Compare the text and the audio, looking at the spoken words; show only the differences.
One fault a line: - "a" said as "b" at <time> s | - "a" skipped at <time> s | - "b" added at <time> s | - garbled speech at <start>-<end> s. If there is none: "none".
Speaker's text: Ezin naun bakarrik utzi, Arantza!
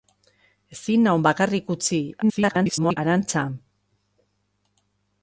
- garbled speech at 2.2-3.0 s